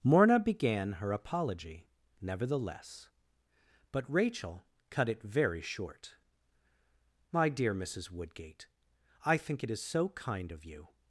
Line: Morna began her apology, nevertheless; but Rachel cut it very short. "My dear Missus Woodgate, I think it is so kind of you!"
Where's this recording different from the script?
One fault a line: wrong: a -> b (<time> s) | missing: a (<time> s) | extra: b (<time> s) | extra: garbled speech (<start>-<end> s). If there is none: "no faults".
no faults